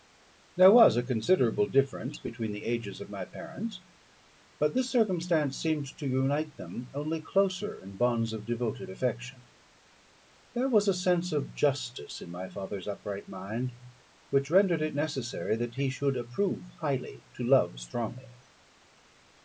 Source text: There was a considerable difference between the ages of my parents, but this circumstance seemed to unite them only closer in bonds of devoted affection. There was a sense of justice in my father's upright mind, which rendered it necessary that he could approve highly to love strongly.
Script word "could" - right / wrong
wrong